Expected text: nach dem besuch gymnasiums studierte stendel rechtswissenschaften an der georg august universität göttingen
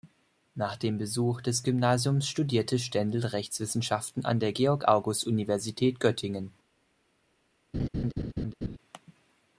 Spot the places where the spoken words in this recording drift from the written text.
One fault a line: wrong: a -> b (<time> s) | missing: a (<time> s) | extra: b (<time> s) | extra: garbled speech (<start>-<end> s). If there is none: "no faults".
extra: des (1.4 s)